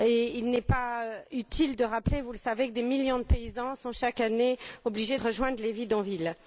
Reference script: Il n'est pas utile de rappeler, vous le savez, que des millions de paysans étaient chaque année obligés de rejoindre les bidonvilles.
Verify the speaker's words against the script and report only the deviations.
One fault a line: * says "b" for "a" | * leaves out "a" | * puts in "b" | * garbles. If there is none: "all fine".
* says "sont" for "étaient"